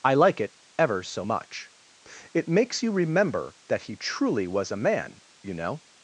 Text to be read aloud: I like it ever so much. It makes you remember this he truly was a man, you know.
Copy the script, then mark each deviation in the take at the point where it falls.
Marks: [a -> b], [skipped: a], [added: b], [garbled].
I like it ever so much. It makes you remember [this -> that] he truly was a man, you know.